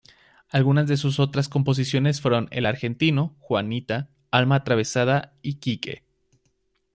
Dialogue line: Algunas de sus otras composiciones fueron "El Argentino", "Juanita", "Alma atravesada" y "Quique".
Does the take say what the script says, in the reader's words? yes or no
yes